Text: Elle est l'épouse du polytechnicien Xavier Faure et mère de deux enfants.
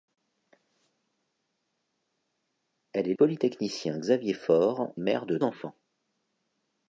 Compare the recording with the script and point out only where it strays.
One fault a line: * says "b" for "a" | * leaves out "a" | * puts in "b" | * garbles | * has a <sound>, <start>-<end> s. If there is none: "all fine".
* leaves out "l'épouse du"
* leaves out "et"
* leaves out "deux"